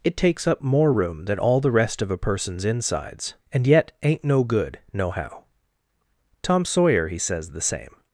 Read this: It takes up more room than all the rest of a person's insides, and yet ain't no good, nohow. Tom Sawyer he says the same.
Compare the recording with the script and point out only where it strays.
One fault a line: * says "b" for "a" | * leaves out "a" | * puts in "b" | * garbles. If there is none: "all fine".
all fine